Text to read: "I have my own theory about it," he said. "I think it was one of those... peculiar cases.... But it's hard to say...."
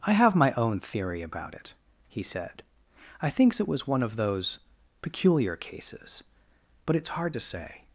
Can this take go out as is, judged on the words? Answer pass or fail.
fail